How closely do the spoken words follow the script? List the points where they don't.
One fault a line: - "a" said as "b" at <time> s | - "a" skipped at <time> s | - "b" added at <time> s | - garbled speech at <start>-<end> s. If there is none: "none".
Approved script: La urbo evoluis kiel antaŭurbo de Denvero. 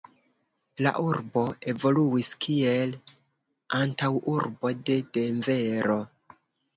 none